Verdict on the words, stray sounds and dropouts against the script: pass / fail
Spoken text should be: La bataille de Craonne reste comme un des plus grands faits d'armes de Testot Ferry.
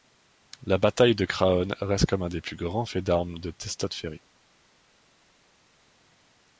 pass